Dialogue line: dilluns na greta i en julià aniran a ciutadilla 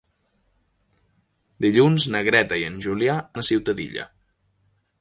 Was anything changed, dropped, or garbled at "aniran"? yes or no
yes